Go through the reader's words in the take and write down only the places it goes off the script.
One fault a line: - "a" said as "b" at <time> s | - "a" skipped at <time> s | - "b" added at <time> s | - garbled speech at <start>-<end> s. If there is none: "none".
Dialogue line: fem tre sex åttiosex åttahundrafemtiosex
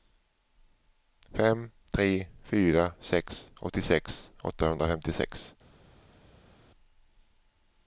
- "fyra" added at 2.5 s